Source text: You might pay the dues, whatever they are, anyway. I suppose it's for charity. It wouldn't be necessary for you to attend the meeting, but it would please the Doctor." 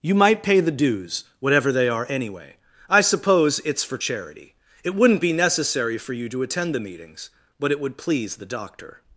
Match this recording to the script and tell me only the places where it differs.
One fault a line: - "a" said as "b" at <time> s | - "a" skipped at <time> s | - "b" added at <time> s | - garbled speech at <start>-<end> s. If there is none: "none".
- "meeting" said as "meetings" at 6.8 s